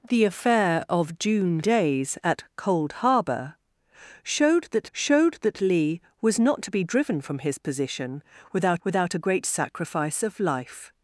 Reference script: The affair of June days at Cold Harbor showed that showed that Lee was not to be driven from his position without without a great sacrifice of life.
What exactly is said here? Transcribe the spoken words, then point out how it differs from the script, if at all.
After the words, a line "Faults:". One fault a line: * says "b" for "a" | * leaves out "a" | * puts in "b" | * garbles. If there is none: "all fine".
The affair of June days at Cold Harbor showed that showed that Lee was not to be driven from his position without without a great sacrifice of life.
Faults:
all fine